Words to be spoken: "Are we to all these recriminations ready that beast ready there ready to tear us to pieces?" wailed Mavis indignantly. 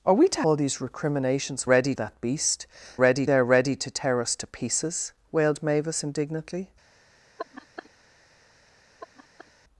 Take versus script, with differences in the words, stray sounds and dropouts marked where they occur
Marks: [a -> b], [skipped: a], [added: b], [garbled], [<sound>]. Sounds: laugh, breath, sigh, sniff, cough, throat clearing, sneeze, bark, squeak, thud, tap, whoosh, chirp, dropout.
"Are we to all these recriminations ready that beast ready there ready to tear us to pieces?" wailed Mavis indignantly. [laugh] [laugh]